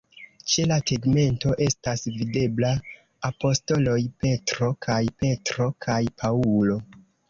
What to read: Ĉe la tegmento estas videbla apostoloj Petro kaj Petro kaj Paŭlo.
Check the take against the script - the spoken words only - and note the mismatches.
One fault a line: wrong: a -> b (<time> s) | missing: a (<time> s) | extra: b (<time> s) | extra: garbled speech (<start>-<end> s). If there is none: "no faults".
no faults